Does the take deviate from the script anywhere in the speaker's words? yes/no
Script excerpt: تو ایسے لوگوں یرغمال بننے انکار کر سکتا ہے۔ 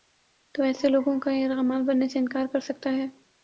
yes